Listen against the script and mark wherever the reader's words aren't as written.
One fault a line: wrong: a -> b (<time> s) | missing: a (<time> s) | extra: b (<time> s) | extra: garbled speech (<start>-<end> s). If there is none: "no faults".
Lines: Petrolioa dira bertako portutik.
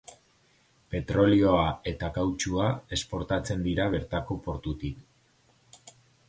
extra: eta kautxua esportatzen (1.9 s)